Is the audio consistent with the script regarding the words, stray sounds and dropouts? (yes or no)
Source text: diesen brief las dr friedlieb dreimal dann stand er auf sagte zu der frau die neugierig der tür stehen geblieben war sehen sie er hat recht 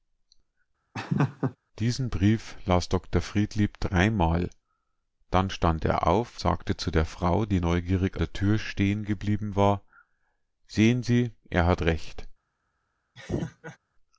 no